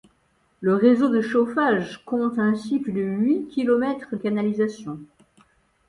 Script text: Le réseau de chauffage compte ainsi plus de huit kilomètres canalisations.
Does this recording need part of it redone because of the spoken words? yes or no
no